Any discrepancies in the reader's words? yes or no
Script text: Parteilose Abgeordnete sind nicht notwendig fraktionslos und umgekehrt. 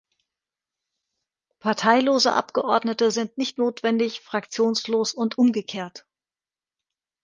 no